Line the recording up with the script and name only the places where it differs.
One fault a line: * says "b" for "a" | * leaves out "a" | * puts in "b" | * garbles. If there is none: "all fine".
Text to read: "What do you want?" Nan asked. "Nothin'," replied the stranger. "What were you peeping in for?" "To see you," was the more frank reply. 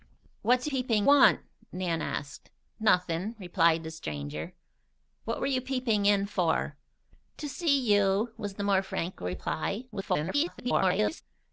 * says "peeping" for "you"
* garbles